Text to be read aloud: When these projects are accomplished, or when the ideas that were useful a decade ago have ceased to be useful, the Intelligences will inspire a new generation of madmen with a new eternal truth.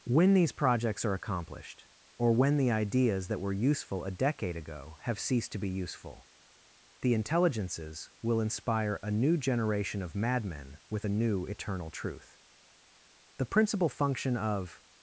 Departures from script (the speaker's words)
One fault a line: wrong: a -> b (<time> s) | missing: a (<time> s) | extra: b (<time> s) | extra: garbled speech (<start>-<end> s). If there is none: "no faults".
extra: The principal function of (13.4 s)